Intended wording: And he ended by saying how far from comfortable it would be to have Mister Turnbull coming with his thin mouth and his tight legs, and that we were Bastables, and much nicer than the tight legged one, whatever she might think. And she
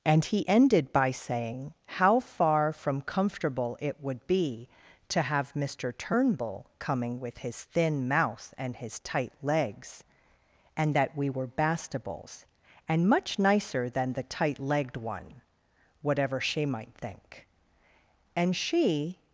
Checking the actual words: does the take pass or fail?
pass